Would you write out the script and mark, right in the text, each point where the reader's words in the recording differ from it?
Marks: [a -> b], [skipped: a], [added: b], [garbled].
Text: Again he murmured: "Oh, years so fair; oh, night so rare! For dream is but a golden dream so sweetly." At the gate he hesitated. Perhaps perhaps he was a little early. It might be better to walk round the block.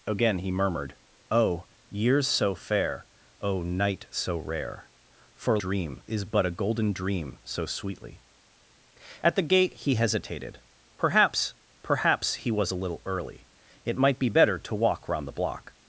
Again he murmured: "Oh, years so fair; oh, night so rare! For dream is but a golden dream so sweetly." At the gate he hesitated. Perhaps perhaps he was a little early. It might be better to walk round the block.